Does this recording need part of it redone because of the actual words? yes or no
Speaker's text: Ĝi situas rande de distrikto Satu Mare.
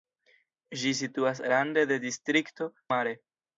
yes